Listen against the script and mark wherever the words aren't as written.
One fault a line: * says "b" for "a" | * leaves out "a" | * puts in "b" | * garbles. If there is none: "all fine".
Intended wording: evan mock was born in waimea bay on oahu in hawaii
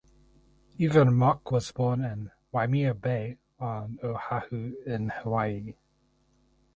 all fine